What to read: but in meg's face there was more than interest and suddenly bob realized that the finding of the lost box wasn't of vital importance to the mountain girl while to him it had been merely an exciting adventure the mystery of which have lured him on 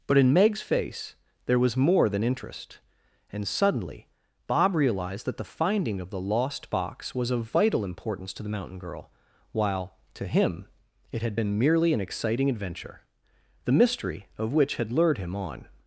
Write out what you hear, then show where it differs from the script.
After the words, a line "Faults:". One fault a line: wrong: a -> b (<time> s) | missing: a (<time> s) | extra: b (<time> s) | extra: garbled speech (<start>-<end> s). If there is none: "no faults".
but in meg's face there was more than interest and suddenly bob realized that the finding of the lost box was of vital importance to the mountain girl while to him it had been merely an exciting adventure the mystery of which had lured him on
Faults:
wrong: wasn't -> was (7.2 s)
wrong: have -> had (14.8 s)